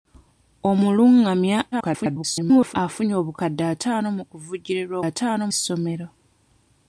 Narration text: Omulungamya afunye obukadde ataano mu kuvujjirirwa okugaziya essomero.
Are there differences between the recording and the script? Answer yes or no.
yes